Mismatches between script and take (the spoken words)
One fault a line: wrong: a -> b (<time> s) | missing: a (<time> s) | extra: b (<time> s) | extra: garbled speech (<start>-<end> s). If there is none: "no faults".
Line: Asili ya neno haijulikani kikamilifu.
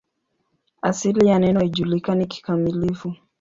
no faults